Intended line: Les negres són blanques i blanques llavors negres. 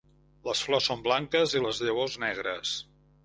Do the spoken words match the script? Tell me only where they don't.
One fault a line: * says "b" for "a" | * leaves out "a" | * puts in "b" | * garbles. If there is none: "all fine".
* says "flors" for "negres"
* says "les" for "blanques"